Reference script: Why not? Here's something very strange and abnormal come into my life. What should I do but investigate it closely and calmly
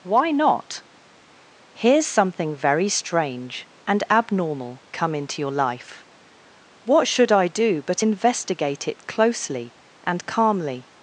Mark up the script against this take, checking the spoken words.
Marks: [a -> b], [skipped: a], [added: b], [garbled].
Why not? Here's something very strange and abnormal come into [my -> your] life. What should I do but investigate it closely and calmly